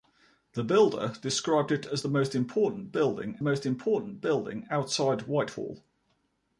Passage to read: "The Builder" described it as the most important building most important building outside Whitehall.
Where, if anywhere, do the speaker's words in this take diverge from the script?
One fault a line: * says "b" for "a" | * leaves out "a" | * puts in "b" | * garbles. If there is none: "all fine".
all fine